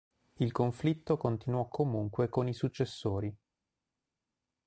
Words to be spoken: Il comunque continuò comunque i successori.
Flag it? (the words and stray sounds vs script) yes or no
yes